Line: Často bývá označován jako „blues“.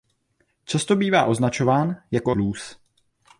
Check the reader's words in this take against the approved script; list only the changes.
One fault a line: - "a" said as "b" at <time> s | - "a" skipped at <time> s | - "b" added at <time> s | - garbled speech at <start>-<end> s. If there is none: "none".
none